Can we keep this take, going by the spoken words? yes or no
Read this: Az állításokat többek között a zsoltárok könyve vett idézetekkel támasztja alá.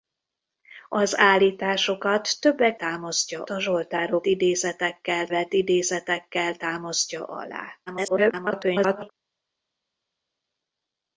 no